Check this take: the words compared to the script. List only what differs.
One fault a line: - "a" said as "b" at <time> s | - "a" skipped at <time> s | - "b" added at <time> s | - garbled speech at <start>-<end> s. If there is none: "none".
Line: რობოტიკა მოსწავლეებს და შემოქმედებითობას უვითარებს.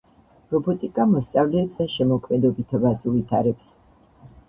none